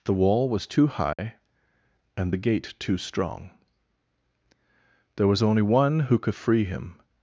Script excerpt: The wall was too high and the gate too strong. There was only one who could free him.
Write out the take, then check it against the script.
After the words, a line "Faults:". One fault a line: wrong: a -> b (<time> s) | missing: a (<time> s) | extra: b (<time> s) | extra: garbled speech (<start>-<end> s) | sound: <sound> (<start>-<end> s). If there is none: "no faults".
The wall was too high and the gate too strong. There was only one who could free him.
Faults:
sound: dropout (1.1-1.2 s)